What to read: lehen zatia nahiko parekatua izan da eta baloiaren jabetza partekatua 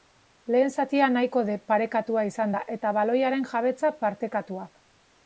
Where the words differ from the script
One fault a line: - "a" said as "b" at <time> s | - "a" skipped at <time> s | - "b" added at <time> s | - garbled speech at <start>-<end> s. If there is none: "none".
none